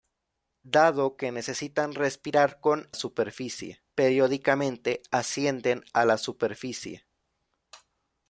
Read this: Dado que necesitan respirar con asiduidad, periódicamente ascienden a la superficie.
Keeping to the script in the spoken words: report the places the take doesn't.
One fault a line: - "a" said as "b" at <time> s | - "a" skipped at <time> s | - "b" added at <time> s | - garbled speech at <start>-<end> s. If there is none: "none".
- "asiduidad" said as "superficie" at 2.9 s